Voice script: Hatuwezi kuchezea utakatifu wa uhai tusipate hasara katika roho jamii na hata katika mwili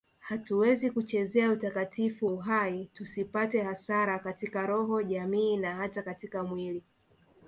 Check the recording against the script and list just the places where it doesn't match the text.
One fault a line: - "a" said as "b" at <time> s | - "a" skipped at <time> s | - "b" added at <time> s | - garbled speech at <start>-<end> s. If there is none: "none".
- "wa" skipped at 2.3 s